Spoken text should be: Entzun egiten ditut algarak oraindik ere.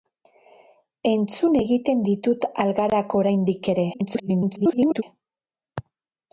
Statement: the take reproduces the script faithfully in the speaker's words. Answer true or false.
false